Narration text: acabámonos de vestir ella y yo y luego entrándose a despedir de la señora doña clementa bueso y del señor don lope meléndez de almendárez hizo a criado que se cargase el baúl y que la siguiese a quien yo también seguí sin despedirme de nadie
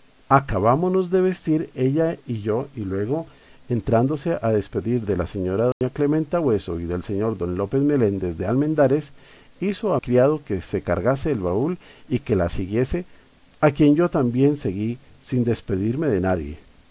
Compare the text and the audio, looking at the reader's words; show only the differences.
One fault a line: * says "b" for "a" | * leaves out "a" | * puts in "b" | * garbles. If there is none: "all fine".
all fine